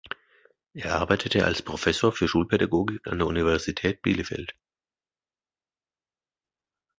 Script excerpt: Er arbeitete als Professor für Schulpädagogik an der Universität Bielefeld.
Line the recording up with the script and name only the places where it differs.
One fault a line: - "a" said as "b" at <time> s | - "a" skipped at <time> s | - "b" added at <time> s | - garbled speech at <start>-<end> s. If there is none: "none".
none